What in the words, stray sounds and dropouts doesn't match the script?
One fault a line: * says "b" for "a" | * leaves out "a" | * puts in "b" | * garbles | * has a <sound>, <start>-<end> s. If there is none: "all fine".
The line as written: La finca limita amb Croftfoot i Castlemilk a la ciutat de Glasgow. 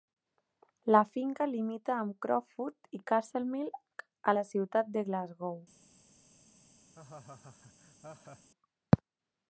* has a laugh, 6.9-8.5 s